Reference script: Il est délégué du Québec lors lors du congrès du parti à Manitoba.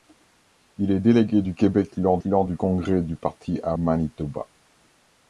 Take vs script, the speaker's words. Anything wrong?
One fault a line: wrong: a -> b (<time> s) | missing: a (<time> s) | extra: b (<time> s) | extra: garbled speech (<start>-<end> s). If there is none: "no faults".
no faults